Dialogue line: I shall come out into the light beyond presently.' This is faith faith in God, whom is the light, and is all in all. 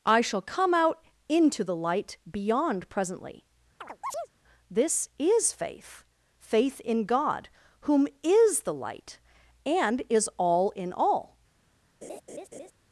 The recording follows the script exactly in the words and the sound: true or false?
false